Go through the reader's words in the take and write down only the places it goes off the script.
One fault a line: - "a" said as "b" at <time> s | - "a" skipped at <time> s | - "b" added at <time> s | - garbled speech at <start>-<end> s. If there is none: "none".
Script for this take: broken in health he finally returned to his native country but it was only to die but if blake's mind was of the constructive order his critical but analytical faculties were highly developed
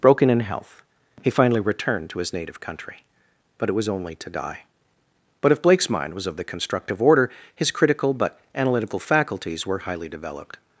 none